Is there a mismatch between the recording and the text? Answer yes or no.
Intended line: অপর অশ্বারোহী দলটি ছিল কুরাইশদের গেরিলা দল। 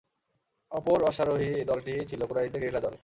no